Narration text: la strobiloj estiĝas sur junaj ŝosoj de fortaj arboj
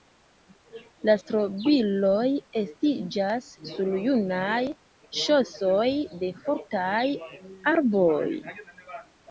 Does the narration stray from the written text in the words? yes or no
no